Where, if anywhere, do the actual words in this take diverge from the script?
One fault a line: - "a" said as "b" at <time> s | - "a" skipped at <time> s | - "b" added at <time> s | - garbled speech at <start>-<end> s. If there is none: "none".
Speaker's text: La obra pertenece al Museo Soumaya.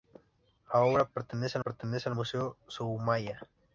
- "pertenece" added at 1.6 s